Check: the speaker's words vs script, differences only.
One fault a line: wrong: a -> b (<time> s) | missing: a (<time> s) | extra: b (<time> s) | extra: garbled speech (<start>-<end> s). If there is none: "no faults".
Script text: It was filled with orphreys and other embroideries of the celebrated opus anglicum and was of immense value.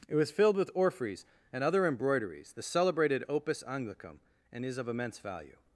missing: of (2.5 s)
wrong: was -> is (4.7 s)